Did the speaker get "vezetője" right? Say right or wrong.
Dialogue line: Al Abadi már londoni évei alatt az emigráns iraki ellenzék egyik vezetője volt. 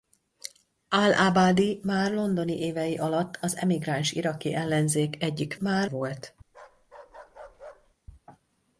wrong